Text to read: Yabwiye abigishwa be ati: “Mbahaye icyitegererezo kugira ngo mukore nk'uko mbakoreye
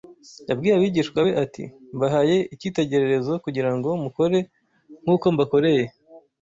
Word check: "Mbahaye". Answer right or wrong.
right